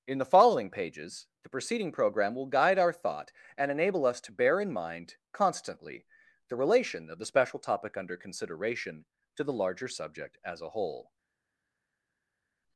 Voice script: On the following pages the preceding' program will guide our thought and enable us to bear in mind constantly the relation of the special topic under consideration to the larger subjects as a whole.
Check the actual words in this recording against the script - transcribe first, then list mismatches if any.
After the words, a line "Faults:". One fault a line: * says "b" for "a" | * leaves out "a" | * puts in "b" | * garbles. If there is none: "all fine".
In the following pages the preceding' program will guide our thought and enable us to bear in mind constantly the relation of the special topic under consideration to the larger subject as a whole.
Faults:
* says "In" for "On"
* says "subject" for "subjects"